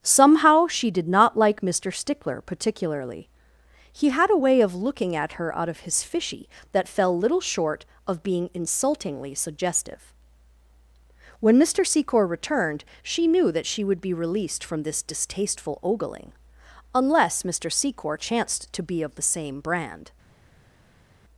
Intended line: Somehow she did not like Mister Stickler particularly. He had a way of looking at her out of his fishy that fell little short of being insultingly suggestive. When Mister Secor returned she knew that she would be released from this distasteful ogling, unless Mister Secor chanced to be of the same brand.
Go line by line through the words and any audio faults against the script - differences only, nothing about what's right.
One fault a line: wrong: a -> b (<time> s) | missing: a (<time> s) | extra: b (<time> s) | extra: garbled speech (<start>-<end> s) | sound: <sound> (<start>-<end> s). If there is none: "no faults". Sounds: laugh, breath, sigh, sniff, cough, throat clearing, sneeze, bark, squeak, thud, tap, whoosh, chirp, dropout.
no faults